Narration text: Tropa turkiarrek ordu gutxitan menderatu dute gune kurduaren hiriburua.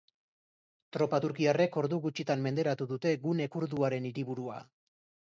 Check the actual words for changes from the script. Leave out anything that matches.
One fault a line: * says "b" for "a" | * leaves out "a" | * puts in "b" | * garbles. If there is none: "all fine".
all fine